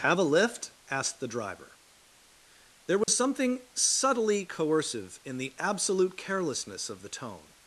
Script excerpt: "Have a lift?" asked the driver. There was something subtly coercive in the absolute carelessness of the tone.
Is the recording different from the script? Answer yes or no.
no